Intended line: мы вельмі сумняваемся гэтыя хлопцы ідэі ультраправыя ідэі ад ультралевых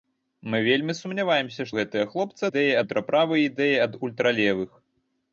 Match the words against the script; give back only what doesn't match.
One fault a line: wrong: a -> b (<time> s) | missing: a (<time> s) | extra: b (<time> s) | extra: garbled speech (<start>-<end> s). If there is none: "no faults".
no faults